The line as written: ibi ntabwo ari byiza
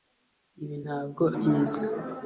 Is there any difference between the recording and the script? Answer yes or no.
yes